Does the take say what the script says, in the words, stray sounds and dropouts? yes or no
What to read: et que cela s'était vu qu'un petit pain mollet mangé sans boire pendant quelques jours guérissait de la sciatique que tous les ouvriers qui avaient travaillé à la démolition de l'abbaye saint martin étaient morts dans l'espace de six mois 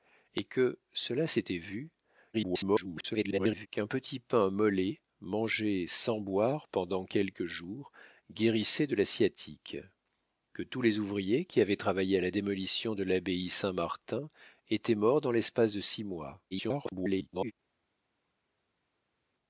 no